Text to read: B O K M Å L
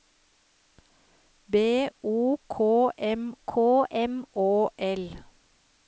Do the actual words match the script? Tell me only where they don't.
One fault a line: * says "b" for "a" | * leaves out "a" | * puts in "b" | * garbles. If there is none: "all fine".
* puts in "K M"